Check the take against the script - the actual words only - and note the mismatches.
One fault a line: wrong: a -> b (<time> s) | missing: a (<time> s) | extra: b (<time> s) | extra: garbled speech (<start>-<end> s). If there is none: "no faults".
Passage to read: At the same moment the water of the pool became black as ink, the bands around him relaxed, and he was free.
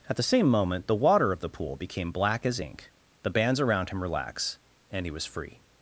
wrong: relaxed -> relax (4.0 s)